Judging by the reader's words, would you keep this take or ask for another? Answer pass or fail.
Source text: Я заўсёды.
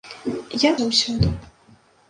pass